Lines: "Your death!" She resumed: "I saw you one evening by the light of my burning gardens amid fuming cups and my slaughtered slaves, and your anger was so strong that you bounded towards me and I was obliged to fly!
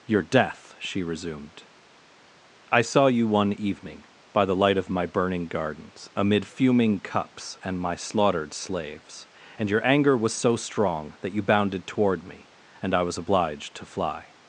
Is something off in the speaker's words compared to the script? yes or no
yes